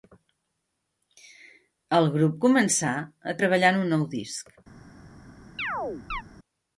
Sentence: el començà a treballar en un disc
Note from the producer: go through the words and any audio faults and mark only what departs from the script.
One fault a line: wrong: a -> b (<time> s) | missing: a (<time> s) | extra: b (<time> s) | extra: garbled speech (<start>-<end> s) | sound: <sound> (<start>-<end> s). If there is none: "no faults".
extra: grup (2.2 s)
extra: nou (4.0 s)
sound: chirp (5.6-6.2 s)